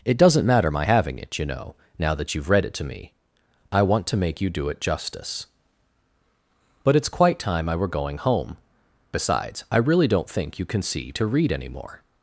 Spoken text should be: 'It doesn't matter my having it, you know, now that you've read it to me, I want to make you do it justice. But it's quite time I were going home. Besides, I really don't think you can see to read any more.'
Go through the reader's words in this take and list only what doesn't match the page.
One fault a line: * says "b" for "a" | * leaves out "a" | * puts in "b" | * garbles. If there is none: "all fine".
all fine